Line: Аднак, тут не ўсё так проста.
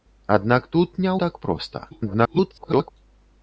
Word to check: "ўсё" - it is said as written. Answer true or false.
false